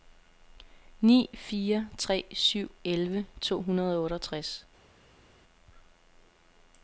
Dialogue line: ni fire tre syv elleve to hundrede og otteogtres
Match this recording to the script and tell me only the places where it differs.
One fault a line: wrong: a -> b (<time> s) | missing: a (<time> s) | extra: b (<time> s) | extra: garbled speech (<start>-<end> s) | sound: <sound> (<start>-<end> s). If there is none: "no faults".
no faults